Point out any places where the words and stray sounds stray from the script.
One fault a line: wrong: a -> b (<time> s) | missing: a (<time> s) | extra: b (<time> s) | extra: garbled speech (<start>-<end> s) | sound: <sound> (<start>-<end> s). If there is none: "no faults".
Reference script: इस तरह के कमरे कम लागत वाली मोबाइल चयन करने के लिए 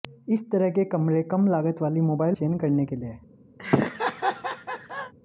sound: laugh (3.6-5.1 s)